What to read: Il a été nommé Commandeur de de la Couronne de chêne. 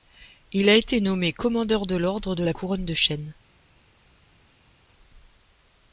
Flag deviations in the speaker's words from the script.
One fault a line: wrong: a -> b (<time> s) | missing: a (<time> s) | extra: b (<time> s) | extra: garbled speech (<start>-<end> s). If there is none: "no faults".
extra: l'Ordre (1.9 s)